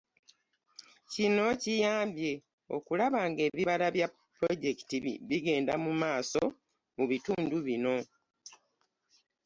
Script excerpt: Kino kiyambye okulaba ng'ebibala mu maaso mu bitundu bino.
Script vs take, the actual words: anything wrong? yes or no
yes